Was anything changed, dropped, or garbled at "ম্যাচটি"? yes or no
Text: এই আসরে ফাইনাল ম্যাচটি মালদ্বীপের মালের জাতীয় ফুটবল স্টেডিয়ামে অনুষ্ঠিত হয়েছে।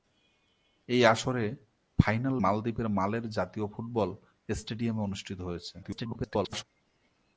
yes